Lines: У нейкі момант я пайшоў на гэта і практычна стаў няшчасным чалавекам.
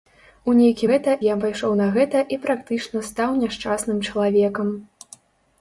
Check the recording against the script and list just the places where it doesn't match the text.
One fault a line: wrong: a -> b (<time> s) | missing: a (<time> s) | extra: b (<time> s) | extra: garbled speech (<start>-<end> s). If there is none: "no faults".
wrong: момант -> гэта (0.9 s)